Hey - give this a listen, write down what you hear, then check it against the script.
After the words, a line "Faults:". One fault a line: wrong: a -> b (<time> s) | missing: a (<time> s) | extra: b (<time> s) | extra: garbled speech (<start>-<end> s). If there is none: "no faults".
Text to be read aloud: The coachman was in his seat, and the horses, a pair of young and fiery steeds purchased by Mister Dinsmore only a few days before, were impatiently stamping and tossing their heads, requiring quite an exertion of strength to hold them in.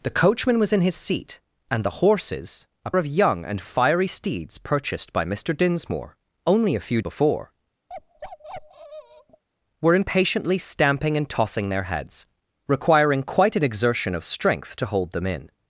The coachman was in his seat, and the horses, a of young and fiery steeds purchased by Mister Dinsmore only a few before, were impatiently stamping and tossing their heads, requiring quite an exertion of strength to hold them in.
Faults:
missing: pair (2.9 s)
missing: days (7.0 s)